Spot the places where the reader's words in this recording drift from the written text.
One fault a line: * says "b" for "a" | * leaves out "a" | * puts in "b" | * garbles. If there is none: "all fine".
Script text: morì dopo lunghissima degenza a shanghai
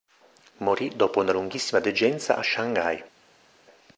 * puts in "una"